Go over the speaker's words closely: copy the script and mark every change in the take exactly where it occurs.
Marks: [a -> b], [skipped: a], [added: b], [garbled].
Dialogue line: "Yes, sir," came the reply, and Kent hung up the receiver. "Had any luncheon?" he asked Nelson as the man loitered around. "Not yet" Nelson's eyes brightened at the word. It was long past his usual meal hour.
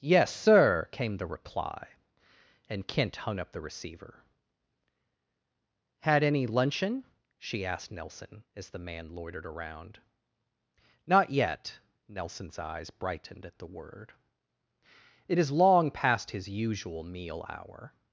"Yes, sir," came the reply, and Kent hung up the receiver. "Had any luncheon?" [he -> she] asked Nelson as the man loitered around. "Not yet" Nelson's eyes brightened at the word. It [was -> is] long past his usual meal hour.